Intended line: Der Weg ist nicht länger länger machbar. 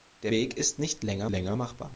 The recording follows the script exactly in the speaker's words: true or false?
true